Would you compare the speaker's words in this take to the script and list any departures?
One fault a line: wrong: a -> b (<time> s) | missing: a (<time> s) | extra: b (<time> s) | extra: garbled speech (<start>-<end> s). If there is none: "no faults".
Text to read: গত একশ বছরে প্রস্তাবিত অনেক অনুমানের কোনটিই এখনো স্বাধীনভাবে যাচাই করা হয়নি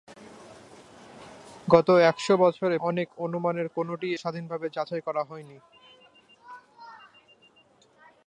missing: প্রস্তাবিত (2.8 s)
missing: এখনো (4.2 s)